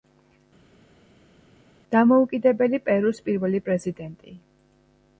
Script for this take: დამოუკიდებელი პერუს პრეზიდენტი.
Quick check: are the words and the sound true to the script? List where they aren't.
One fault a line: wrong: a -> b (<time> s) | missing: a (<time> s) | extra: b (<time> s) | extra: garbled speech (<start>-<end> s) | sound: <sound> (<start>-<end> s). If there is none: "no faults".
extra: პირველი (3.3 s)